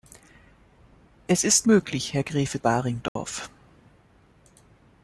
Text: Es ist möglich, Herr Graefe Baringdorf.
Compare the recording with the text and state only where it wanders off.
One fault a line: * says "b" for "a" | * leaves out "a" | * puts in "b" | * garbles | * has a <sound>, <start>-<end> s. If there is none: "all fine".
* has a dropout, 3.1-3.2 s